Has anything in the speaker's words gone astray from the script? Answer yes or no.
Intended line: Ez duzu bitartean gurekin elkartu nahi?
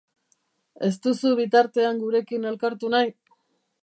no